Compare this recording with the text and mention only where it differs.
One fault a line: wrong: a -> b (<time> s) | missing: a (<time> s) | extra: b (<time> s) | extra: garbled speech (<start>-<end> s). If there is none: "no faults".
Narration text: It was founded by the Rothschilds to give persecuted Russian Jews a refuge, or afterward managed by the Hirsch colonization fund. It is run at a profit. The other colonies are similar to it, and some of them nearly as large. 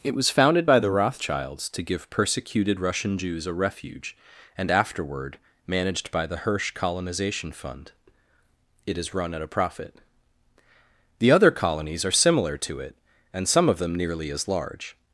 wrong: or -> and (4.6 s)